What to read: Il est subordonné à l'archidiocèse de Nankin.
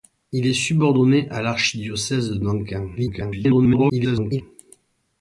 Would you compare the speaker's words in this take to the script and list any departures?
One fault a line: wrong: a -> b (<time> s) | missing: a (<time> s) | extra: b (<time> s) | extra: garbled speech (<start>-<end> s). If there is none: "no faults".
extra: garbled speech (3.0-4.4 s)